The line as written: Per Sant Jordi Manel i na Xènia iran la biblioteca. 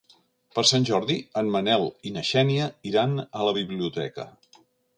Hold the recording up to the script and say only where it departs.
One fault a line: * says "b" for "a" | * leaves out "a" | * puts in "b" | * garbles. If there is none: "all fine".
* puts in "en"
* puts in "a"